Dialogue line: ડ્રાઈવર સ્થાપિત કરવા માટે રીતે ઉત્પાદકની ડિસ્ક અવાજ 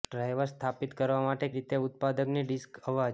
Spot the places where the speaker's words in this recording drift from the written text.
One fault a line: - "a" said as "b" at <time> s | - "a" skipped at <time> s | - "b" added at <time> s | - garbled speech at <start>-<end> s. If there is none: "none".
none